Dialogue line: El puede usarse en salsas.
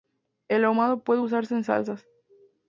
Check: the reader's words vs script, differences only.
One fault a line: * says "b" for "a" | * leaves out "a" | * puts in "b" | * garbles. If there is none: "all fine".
* puts in "ahumado"